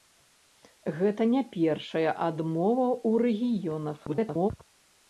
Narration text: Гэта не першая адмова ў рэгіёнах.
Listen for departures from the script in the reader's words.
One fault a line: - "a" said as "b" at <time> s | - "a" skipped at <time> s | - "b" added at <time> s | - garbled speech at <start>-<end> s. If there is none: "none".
- garbled speech at 4.1-4.5 s